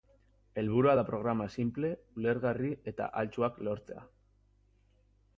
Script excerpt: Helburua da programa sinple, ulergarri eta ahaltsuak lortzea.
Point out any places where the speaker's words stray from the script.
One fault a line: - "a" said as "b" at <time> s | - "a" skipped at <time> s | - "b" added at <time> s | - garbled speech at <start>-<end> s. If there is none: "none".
none